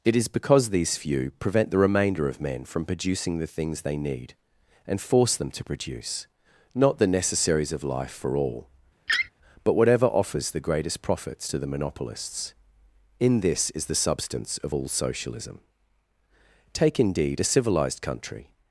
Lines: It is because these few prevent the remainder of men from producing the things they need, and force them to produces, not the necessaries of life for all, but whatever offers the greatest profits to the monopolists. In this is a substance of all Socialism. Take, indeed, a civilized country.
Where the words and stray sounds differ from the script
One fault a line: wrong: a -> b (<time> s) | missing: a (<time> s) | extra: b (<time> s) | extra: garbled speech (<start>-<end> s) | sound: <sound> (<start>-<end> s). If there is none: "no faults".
wrong: produces -> produce (5.6 s)
sound: laugh (9.1-9.3 s)
wrong: a -> the (13.9 s)